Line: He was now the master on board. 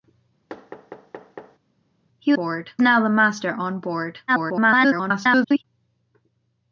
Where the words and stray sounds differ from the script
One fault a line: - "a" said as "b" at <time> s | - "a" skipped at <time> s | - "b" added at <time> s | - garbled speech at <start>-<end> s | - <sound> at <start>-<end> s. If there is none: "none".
- thud at 0.5-1.6 s
- "was" said as "board" at 2.3 s
- garbled speech at 4.3-5.6 s